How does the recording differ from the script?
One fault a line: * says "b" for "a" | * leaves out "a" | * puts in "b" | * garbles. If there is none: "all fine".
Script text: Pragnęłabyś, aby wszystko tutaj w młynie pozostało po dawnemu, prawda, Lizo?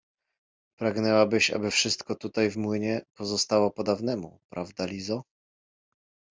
all fine